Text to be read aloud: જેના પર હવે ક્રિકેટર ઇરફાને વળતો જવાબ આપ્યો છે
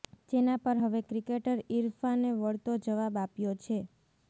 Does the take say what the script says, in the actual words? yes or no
yes